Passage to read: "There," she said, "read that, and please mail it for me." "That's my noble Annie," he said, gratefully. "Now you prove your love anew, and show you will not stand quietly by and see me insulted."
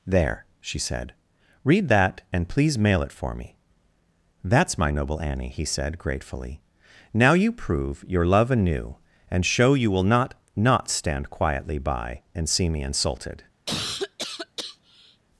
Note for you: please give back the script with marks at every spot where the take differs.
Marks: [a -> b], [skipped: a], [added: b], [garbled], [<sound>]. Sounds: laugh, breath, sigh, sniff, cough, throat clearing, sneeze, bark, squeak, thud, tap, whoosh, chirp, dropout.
"There," she said, "read that, and please mail it for me." "That's my noble Annie," he said, gratefully. "Now you prove your love anew, and show you will not [added: not] stand quietly by and see me insulted." [cough]